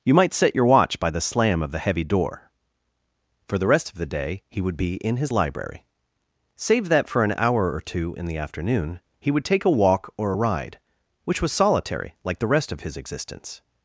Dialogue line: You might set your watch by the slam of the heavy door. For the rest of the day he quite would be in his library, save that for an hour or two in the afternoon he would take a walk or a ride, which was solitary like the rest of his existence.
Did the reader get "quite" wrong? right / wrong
wrong